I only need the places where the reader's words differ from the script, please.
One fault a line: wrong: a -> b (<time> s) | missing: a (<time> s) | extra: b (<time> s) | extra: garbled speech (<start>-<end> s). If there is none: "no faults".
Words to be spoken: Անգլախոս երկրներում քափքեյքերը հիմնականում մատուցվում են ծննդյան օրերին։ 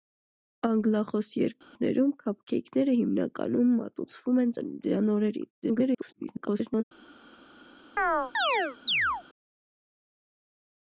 extra: garbled speech (5.6-6.8 s)